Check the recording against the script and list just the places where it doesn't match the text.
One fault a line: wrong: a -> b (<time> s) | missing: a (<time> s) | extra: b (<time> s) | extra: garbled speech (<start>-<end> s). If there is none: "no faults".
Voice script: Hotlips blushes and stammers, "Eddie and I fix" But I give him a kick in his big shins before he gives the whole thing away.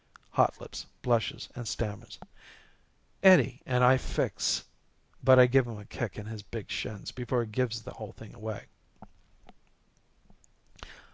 no faults